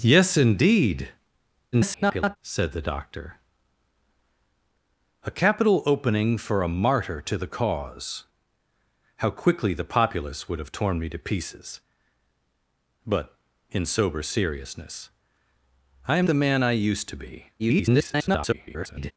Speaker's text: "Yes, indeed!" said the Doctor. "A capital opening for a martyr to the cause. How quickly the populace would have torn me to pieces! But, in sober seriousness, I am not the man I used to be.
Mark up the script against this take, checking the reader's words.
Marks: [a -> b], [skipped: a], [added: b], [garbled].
"Yes, indeed!" [garbled] said the Doctor. "A capital opening for a martyr to the cause. How quickly the populace would have torn me to pieces! But, in sober seriousness, I am [skipped: not] the man I used to be. [garbled]